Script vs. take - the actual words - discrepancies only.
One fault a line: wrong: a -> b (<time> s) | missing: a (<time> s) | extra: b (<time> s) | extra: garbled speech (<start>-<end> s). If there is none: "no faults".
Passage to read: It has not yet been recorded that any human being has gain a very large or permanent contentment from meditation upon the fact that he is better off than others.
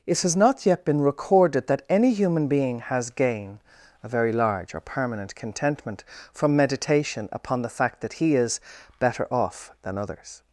no faults